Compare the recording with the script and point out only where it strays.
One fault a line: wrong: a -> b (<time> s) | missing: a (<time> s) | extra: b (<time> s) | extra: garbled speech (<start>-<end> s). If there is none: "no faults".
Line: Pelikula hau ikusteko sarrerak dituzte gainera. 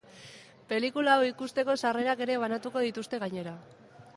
extra: ere banatuko (2.3 s)